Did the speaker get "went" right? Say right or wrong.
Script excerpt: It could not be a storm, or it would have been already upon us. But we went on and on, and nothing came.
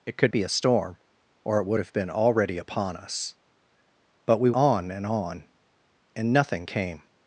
wrong